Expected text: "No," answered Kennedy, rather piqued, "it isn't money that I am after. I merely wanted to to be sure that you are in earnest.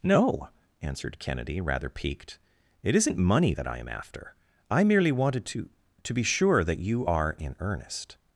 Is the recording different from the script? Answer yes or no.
no